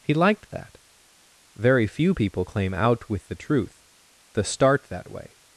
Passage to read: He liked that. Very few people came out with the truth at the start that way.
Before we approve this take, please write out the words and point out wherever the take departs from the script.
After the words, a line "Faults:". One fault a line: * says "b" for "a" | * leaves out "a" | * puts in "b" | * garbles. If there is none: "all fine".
He liked that. Very few people claim out with the truth the start that way.
Faults:
* says "claim" for "came"
* leaves out "at"